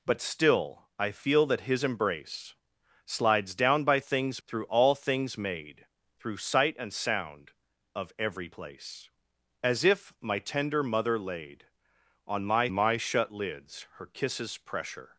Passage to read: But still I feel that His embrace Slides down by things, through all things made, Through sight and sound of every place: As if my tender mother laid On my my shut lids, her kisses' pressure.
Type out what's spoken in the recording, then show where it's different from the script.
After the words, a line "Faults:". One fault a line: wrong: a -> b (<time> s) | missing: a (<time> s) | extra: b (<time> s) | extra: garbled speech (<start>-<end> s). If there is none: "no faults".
But still I feel that His embrace Slides down by things, through all things made, Through sight and sound of every place: As if my tender mother laid On my my shut lids, her kisses' pressure.
Faults:
no faults